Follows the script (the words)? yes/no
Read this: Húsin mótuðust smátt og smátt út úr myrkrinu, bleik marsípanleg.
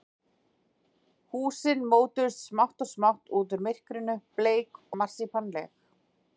yes